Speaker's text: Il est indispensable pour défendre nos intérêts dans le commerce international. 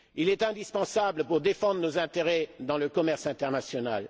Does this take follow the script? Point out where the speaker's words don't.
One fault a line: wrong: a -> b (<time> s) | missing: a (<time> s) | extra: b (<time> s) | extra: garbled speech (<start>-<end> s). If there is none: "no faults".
no faults